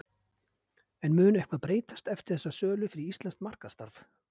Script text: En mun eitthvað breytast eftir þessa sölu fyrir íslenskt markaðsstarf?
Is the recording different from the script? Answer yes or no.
no